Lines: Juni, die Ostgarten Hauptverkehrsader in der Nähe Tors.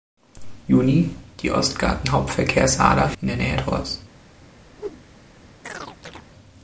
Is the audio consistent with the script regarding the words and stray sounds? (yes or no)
no